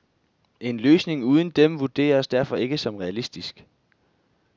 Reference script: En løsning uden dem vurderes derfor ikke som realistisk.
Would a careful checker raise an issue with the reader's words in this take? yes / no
no